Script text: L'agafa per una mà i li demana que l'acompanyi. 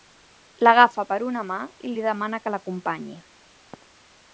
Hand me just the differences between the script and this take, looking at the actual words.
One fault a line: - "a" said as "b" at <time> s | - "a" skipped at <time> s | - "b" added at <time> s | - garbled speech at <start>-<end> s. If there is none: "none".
none